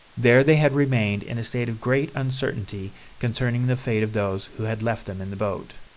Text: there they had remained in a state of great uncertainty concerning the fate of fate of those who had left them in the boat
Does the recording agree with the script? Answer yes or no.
no